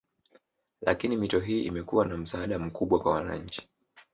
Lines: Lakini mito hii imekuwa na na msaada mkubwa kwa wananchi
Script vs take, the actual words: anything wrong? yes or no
yes